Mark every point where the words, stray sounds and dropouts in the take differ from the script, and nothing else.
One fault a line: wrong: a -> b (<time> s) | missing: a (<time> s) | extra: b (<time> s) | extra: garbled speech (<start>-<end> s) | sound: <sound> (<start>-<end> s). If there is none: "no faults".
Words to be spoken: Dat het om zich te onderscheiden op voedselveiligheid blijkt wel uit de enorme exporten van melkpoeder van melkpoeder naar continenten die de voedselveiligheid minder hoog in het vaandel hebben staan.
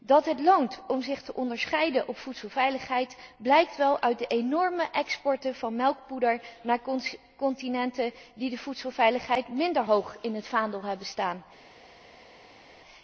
extra: loont (0.4 s)
missing: van melkpoeder (6.4 s)